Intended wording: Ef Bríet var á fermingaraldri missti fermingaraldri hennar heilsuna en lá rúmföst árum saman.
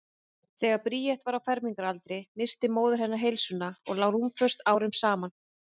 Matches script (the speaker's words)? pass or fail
fail